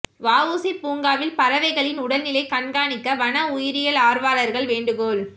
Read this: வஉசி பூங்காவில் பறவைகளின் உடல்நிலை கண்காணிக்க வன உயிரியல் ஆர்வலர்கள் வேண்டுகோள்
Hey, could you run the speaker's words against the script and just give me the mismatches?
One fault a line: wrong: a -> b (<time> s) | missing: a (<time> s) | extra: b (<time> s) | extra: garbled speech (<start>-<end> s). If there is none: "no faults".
no faults